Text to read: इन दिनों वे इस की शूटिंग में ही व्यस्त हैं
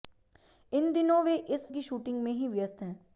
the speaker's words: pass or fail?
pass